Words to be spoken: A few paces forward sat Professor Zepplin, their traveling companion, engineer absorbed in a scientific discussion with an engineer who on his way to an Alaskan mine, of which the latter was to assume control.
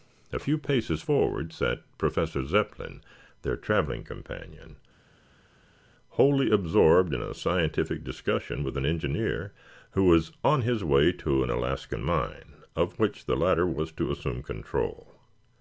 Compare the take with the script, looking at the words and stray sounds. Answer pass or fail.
fail